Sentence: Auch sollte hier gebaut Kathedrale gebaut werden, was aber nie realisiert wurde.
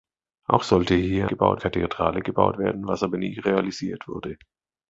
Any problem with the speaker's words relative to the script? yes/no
no